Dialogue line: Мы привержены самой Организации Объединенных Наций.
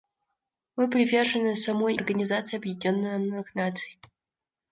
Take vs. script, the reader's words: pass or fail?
pass